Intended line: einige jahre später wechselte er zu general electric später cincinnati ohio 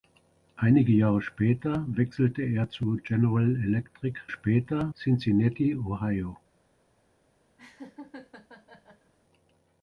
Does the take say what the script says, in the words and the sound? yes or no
no